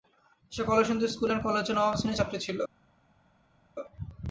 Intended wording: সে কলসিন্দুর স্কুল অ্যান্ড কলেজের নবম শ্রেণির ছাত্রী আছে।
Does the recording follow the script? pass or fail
fail